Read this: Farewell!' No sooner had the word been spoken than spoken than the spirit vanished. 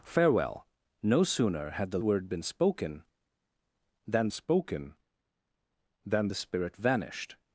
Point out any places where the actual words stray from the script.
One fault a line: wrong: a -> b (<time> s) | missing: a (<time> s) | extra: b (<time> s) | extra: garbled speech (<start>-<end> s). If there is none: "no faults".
no faults